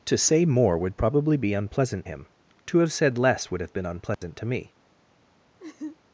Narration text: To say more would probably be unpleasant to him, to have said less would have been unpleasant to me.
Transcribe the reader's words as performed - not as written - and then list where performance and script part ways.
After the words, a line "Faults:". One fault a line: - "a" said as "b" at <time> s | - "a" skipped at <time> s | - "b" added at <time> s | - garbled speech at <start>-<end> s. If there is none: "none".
To say more would probably be unpleasant him, to have said less would have been unpleasant to me.
Faults:
- "to" skipped at 2.1 s